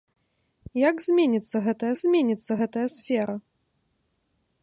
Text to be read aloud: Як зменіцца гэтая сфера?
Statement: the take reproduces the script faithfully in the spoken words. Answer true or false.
false